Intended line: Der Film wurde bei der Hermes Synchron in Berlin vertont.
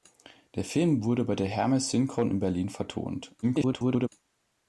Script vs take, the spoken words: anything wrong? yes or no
yes